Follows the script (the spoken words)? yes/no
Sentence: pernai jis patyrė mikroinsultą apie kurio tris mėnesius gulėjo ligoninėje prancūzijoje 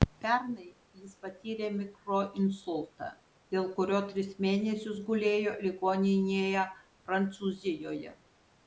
no